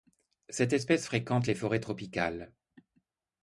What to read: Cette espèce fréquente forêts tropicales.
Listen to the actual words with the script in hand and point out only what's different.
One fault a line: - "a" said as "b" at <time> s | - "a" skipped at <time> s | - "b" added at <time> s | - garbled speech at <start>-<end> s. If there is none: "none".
- "les" added at 1.4 s